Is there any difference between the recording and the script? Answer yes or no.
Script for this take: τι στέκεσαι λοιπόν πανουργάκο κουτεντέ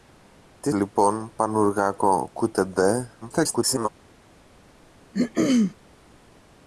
yes